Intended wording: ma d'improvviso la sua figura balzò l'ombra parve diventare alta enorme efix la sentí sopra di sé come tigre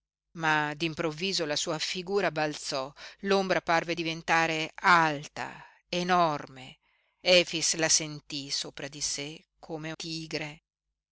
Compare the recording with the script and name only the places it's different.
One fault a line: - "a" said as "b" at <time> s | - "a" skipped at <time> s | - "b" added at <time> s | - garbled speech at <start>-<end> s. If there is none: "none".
none